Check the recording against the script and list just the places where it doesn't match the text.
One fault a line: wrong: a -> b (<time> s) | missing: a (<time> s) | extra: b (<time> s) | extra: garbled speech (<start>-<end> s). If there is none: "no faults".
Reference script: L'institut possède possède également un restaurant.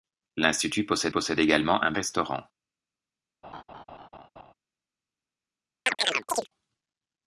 no faults